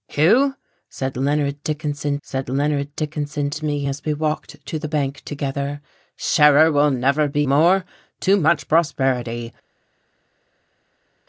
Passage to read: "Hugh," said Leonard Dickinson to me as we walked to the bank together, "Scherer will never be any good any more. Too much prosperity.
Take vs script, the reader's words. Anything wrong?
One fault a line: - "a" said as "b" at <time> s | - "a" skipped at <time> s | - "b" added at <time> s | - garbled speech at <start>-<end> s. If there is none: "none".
- "said Leonard Dickinson" added at 2.2 s
- "any good any" skipped at 7.5 s